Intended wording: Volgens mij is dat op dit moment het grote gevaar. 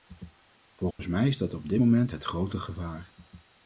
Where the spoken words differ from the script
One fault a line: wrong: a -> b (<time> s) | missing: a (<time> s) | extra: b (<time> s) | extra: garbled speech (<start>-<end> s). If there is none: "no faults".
no faults